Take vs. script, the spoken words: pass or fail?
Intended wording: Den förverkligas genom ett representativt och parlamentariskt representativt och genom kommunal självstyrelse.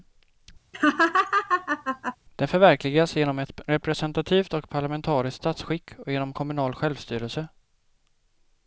fail